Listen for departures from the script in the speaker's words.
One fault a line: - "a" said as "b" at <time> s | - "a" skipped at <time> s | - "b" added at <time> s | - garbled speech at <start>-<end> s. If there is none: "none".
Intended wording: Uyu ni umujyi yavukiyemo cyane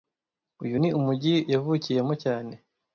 none